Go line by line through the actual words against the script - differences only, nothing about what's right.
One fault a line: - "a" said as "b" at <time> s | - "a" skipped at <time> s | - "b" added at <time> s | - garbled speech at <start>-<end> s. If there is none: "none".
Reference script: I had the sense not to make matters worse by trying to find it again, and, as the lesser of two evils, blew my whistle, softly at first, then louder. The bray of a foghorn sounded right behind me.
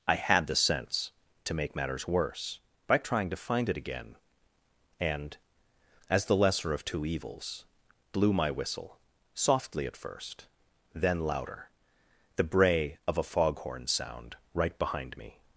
- "not" skipped at 1.1 s
- "sounded" said as "sound" at 13.9 s